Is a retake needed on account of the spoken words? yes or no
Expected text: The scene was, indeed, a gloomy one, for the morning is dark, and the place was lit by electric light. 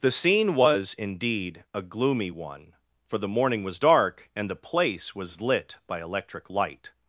yes